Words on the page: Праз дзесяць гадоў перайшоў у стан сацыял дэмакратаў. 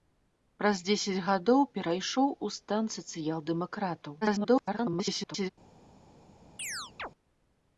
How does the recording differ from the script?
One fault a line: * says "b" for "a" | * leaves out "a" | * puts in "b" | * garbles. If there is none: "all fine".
* garbles